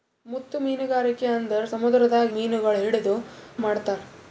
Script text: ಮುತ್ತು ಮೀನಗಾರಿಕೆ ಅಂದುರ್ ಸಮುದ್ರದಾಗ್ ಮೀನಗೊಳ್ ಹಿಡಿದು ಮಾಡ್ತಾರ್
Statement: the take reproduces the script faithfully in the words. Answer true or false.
true